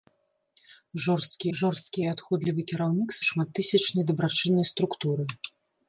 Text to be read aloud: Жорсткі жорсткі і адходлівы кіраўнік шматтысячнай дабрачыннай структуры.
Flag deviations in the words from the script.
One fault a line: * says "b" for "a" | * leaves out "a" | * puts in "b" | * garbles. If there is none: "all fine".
all fine